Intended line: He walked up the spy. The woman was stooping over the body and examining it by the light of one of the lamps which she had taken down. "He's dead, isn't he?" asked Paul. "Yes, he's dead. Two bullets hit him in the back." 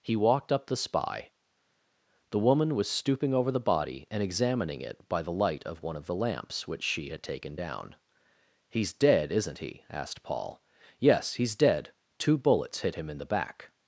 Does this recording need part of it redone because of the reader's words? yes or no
no